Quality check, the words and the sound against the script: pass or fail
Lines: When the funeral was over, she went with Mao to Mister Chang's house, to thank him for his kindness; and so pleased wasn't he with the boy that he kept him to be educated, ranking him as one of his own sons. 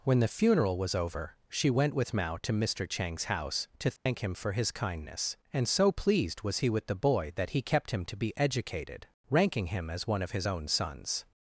fail